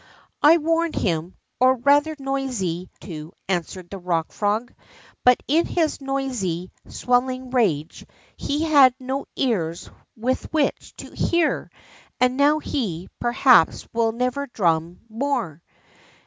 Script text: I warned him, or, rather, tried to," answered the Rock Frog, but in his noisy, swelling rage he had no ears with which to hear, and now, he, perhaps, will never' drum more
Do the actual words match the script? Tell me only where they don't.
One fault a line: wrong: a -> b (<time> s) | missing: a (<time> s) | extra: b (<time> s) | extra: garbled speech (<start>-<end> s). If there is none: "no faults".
wrong: tried -> noisy (2.2 s)